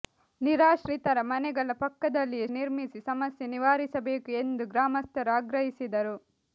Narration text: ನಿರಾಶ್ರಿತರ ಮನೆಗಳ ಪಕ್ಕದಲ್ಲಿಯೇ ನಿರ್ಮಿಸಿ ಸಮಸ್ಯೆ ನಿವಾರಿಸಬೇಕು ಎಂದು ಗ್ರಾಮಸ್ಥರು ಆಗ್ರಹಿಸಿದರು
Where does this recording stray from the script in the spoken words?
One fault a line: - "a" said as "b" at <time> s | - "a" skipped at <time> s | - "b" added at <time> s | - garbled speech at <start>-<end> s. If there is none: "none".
none